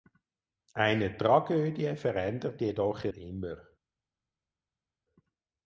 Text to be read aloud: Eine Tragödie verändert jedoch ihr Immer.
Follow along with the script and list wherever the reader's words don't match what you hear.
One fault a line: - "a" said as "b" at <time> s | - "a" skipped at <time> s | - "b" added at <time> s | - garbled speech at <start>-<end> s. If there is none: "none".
none